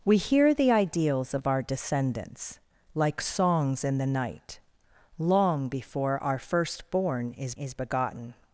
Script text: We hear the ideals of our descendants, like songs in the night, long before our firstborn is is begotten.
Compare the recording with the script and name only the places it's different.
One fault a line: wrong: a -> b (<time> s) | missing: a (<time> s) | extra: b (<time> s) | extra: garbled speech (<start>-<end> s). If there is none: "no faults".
no faults